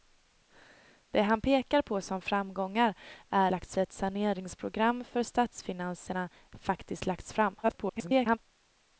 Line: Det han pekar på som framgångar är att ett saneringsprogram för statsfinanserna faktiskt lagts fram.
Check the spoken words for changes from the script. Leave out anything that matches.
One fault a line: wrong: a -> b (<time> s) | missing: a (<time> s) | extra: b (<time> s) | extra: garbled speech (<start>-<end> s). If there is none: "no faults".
wrong: att -> lagts (3.5 s)
extra: garbled speech (7.6-8.4 s)